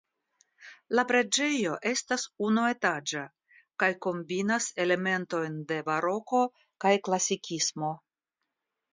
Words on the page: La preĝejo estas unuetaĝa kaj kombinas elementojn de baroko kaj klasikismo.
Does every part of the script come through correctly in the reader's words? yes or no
yes